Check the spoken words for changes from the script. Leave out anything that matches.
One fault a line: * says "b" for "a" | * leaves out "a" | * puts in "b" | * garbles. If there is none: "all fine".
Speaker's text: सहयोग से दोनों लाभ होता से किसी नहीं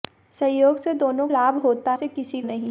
all fine